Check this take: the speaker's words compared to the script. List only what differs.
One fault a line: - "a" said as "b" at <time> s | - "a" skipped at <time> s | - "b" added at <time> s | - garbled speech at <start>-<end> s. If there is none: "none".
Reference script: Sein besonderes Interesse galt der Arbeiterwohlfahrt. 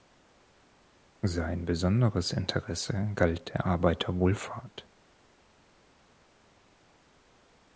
none